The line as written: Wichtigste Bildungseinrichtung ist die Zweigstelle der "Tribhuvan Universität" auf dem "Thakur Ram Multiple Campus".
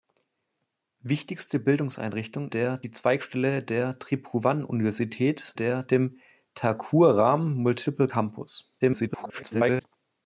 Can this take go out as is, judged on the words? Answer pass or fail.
fail